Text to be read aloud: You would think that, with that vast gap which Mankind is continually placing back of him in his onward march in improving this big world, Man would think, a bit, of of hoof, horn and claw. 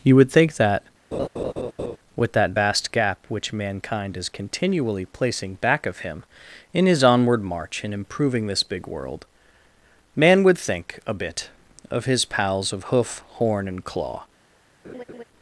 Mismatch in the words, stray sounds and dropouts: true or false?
true